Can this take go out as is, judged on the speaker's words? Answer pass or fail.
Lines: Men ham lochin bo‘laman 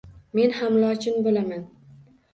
pass